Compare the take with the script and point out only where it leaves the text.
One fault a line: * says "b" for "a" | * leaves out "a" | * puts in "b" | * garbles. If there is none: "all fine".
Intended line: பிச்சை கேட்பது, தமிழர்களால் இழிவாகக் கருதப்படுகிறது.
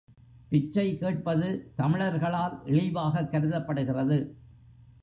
all fine